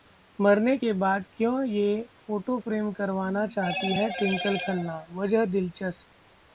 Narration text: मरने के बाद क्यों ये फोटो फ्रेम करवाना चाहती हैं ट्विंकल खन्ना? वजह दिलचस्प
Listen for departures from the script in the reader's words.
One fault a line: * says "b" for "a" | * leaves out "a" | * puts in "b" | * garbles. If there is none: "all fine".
all fine